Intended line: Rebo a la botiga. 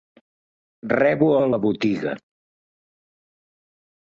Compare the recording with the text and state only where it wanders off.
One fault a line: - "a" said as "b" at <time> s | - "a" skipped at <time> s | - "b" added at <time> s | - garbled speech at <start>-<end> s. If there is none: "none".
none